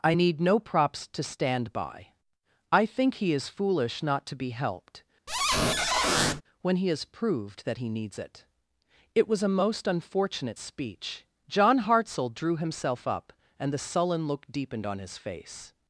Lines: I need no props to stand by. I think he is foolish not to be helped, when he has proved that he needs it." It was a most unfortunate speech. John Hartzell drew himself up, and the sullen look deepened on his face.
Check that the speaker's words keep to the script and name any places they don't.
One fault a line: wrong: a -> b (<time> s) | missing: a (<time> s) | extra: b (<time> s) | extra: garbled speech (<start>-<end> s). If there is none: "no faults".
no faults